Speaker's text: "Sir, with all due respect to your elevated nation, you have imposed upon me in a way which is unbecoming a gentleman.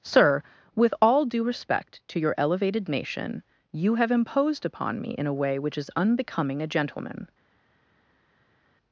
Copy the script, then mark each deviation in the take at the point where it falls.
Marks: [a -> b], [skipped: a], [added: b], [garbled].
"Sir, with all due respect to your elevated nation, you have imposed upon me in a way which is unbecoming a gentleman.